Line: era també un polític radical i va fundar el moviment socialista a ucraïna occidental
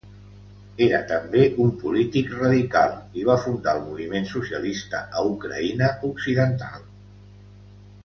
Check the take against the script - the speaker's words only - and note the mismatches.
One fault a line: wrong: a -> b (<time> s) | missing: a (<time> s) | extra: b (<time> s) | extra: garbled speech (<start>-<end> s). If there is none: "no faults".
no faults